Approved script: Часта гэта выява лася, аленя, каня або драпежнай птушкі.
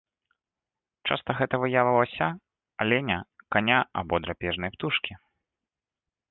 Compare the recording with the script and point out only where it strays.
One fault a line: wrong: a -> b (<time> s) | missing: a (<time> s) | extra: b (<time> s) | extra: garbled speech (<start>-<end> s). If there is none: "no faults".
no faults